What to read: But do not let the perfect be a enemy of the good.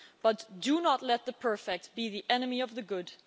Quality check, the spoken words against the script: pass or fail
fail